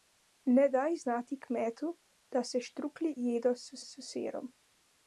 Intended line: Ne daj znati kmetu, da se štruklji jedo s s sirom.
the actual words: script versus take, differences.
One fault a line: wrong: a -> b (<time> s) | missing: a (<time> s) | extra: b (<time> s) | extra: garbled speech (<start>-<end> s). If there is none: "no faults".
no faults